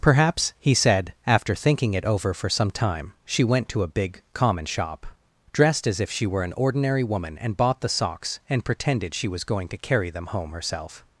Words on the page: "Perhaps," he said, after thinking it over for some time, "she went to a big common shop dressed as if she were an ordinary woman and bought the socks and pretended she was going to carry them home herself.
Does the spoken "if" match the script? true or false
true